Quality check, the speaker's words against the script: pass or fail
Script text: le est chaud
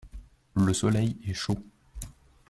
fail